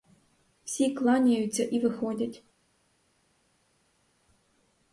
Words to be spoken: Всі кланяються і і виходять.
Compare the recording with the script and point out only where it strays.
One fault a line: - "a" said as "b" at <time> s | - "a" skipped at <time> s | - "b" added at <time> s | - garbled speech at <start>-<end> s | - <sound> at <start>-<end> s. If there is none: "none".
- "і" skipped at 1.8 s